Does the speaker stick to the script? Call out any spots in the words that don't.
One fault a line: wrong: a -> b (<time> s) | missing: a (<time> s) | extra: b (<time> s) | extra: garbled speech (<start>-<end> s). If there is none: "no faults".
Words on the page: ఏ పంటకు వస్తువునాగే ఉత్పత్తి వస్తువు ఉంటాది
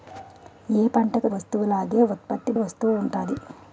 no faults